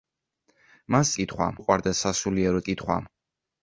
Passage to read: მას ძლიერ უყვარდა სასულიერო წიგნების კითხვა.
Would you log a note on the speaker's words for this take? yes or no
yes